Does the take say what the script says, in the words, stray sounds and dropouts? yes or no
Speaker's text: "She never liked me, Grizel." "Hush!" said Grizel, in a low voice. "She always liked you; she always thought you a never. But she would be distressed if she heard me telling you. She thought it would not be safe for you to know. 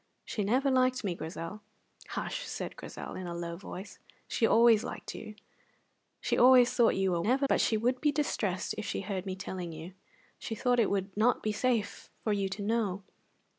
yes